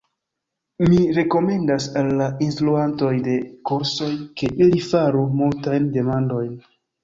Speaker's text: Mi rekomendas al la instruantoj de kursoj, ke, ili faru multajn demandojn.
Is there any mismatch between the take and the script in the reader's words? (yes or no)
no